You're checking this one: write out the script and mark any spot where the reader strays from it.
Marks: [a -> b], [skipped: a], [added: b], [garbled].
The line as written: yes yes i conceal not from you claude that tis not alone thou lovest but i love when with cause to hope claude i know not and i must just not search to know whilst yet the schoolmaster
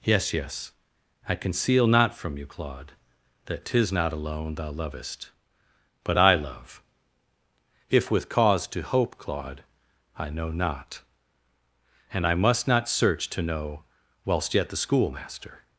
yes yes i conceal not from you claude that tis not alone thou lovest but i love [when -> if] with cause to hope claude i know not and i must [skipped: just] not search to know whilst yet the schoolmaster